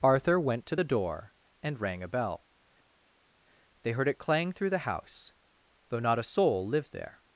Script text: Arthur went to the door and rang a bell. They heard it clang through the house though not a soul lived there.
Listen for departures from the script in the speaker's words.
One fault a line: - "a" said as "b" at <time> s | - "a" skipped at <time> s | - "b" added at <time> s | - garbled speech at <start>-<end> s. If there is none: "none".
none